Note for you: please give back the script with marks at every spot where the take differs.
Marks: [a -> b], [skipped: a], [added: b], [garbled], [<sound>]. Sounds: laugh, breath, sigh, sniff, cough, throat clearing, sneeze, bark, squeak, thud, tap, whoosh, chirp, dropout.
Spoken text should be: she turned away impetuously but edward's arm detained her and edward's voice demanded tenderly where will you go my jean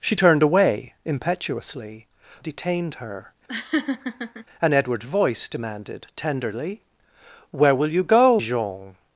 she turned away impetuously [skipped: but edward's arm] detained her [laugh] and edward's voice demanded tenderly where will you go [skipped: my] jean